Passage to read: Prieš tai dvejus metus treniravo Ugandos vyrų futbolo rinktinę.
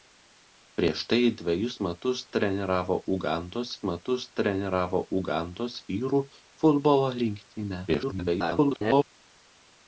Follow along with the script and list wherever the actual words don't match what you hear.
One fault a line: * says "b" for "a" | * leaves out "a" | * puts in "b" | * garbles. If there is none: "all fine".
* puts in "metus treniravo Ugandos"
* garbles